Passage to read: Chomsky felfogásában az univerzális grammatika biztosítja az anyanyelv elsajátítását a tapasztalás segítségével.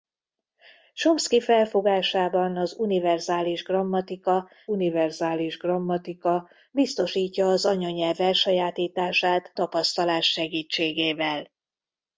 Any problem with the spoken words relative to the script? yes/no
yes